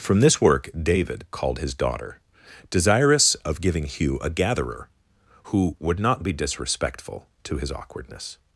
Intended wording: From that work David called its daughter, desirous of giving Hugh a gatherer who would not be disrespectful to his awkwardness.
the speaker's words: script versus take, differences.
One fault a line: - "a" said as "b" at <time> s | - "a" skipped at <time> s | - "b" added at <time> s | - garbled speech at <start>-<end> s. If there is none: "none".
- "that" said as "this" at 0.2 s
- "its" said as "his" at 1.6 s